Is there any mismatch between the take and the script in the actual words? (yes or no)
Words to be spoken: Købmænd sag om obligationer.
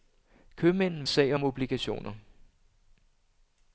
no